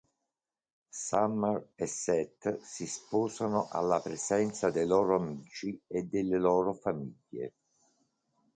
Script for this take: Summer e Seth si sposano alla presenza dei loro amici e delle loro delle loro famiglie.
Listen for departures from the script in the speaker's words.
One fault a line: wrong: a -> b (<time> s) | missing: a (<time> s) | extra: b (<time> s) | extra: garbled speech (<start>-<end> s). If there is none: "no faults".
missing: delle loro (6.7 s)